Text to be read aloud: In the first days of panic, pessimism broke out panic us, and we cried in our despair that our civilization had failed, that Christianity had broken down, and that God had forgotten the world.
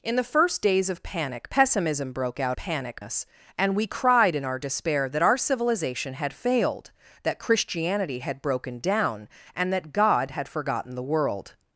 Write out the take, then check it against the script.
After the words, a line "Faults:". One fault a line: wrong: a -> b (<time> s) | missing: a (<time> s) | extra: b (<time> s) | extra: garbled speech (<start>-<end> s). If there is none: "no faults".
In the first days of panic, pessimism broke out panic us, and we cried in our despair that our civilization had failed, that Christianity had broken down, and that God had forgotten the world.
Faults:
no faults